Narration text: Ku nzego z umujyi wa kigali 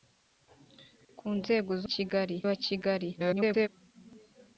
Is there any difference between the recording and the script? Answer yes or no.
yes